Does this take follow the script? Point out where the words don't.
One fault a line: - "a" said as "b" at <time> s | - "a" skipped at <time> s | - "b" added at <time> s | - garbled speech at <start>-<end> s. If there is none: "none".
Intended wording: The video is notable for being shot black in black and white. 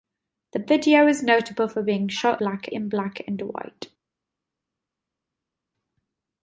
none